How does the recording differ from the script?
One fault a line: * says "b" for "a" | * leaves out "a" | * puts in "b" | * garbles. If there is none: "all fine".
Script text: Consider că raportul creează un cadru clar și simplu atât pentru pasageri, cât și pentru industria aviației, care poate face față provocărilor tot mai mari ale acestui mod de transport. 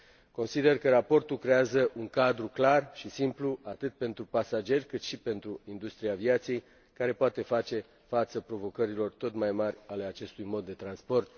all fine